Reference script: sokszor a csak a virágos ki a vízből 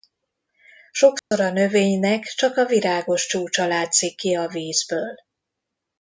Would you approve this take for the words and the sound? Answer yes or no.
no